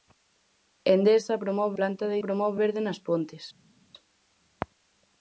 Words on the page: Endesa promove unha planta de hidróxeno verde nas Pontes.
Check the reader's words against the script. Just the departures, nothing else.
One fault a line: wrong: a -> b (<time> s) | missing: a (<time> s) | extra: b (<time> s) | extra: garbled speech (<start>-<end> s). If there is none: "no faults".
missing: unha (1.8 s)
wrong: hidróxeno -> promove (2.2 s)